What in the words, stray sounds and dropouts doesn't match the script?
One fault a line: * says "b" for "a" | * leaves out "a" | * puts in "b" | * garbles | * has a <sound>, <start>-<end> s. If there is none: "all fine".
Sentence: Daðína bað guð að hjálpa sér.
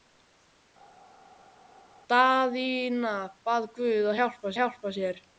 * puts in "hjálpa"